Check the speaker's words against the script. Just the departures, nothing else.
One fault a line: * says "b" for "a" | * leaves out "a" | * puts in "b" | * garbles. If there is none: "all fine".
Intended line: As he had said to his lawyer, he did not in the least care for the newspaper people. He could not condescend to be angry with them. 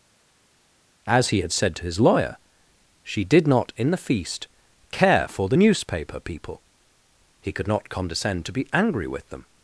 * says "she" for "he"
* says "feast" for "least"